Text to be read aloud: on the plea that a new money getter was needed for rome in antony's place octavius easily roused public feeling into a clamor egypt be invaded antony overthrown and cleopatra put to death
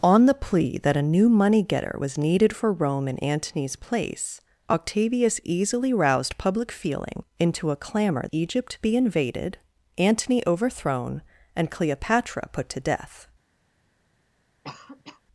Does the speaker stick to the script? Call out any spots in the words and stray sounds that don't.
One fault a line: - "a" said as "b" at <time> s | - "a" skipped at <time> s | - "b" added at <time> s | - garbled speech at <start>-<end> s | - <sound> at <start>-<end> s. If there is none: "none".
- cough at 14.6-15.2 s